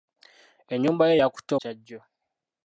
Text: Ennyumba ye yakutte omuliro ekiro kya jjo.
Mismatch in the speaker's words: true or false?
true